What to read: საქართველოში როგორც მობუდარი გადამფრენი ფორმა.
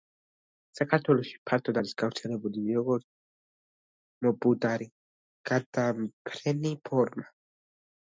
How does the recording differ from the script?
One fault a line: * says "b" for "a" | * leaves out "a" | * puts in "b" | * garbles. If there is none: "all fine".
* puts in "ფართოდ არის გავრცელებული"